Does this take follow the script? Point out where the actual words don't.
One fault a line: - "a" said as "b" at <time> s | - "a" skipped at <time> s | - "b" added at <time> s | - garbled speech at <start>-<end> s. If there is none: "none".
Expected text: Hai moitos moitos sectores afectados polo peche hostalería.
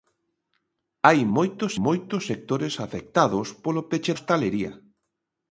none